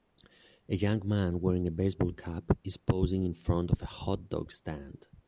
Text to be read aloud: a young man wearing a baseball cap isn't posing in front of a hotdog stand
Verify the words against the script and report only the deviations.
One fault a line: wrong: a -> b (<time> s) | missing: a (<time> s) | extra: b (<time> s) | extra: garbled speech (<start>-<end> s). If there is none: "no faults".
wrong: isn't -> is (2.6 s)